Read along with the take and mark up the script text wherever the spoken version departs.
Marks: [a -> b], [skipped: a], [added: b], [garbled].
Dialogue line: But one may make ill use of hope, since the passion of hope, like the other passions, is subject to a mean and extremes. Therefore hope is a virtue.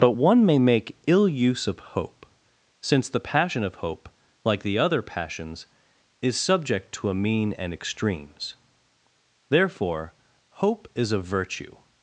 But one may make ill use of hope, since the passion of hope, like the other passions, is subject to a mean and extremes. Therefore hope is a virtue.